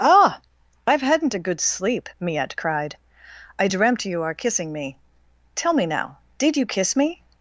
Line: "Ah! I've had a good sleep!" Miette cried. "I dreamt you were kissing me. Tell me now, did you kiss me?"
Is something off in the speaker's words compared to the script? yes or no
yes